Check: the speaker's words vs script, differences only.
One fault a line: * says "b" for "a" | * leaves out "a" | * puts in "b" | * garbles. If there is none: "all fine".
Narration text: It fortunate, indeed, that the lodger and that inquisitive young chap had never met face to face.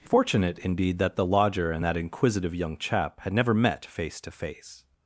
all fine